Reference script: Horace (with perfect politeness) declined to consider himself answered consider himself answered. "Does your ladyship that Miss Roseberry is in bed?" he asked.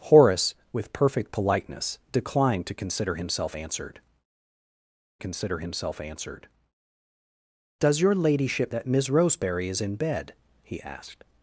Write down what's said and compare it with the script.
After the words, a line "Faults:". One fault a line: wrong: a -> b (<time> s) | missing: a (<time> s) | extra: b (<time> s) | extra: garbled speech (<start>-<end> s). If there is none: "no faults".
Horace (with perfect politeness) declined to consider himself answered consider himself answered. "Does your ladyship that Miss Roseberry is in bed?" he asked.
Faults:
no faults